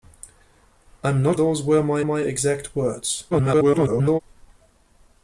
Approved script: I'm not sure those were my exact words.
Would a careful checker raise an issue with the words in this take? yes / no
yes